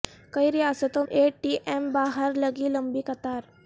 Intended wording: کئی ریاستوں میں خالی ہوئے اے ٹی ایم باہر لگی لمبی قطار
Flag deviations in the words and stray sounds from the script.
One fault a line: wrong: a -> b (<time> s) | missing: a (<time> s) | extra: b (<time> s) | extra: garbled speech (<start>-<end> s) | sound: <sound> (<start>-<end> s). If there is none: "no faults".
missing: میں خالی ہوئے (1.0 s)